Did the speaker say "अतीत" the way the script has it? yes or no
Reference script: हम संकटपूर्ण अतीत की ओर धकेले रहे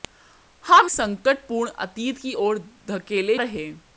yes